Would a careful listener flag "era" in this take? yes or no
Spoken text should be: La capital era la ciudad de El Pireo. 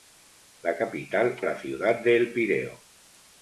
yes